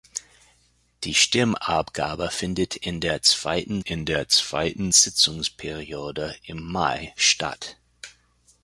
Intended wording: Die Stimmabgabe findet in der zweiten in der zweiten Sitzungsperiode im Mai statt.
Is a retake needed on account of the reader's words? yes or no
no